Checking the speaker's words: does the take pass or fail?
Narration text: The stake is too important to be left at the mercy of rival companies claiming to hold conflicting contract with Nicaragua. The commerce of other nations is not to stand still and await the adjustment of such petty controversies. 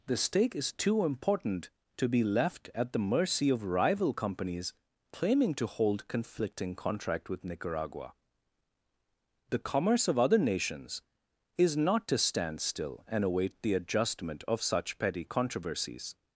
pass